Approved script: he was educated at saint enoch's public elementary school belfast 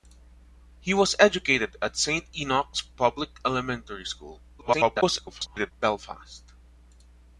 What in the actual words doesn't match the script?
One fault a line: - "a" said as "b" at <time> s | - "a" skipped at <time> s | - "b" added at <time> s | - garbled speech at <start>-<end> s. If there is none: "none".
- garbled speech at 4.6-5.7 s